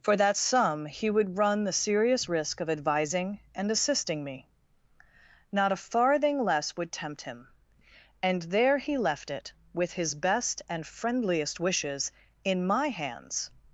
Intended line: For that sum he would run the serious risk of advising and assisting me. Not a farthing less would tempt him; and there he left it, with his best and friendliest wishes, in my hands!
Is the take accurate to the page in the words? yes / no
yes